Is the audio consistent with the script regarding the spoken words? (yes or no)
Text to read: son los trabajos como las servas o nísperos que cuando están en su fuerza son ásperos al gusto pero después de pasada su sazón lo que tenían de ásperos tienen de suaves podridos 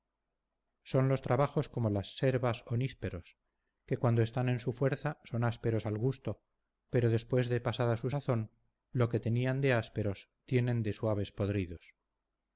yes